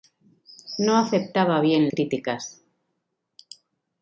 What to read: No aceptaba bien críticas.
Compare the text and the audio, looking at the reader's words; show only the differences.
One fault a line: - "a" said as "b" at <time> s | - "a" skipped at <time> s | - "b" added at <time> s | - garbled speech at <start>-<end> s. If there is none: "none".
none